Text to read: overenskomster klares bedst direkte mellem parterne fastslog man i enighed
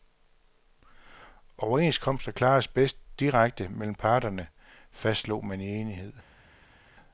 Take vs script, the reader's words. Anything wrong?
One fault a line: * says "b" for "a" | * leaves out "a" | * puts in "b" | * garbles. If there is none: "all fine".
all fine